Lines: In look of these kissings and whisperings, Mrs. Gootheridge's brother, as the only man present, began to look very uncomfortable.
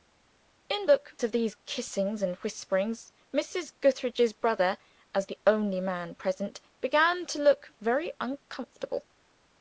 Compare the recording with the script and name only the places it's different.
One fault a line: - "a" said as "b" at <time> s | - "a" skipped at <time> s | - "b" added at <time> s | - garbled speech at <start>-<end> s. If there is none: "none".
none